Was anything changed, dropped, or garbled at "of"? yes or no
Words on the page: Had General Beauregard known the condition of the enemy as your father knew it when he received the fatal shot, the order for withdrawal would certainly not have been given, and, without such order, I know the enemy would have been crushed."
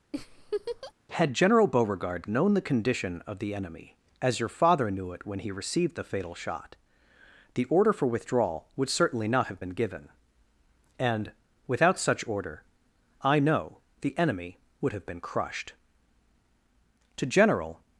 no